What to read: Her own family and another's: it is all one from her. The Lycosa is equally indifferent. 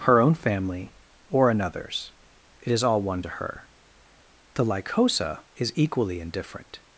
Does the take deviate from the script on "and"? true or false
true